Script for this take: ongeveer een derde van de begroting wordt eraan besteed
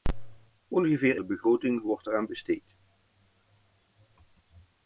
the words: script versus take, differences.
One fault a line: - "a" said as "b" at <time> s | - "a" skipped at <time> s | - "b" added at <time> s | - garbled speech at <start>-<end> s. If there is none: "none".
- "een derde van" skipped at 1.2 s